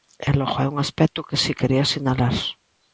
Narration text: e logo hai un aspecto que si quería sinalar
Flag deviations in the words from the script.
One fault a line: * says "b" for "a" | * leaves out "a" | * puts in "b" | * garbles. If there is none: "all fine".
all fine